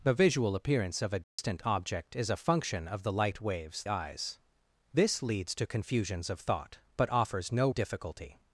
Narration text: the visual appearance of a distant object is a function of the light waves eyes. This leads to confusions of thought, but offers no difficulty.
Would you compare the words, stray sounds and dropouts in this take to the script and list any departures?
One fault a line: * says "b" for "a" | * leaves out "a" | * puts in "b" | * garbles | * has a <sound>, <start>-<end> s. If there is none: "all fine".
* has a dropout, 1.2-1.4 s